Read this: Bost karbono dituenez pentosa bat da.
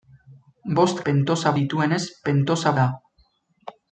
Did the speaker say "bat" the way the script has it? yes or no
no